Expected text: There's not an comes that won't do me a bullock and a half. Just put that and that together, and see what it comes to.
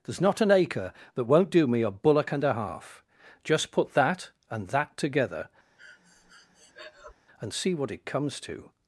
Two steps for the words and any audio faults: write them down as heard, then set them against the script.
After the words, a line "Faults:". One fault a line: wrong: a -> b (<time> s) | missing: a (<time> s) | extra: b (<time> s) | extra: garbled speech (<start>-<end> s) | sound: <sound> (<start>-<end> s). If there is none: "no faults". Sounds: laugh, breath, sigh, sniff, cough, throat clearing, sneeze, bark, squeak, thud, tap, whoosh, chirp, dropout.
There's not an acre that won't do me a bullock and a half. Just put that and that together, and see what it comes to.
Faults:
wrong: comes -> acre (0.5 s)
sound: breath (5.8-7.1 s)